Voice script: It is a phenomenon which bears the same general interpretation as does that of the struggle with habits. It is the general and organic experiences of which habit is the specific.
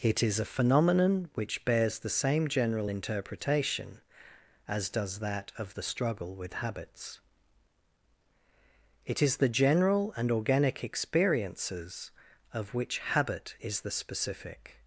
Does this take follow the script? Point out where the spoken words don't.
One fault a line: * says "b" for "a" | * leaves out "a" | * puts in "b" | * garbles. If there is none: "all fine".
all fine